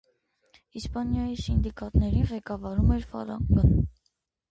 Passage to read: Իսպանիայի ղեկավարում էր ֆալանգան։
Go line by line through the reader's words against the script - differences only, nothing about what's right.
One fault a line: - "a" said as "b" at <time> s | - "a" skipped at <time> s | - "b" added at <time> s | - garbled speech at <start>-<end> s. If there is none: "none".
- "սինդիկատներին" added at 1.4 s